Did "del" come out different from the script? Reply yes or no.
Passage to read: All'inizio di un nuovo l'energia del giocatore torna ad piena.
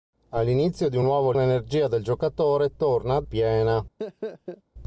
no